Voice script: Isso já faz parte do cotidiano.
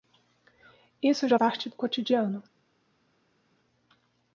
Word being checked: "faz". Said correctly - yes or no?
no